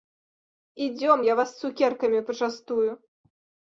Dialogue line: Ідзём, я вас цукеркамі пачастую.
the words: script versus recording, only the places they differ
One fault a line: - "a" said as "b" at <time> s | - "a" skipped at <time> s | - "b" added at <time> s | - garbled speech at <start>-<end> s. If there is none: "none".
none